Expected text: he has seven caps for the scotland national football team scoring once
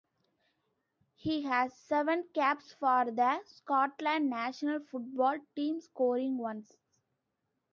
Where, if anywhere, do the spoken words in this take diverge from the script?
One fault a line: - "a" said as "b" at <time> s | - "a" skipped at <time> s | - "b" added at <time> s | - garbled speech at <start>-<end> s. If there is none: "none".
none